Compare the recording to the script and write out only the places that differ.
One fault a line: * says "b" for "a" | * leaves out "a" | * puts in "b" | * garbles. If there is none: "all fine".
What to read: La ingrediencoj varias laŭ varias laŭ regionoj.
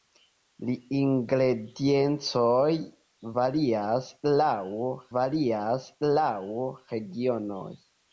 all fine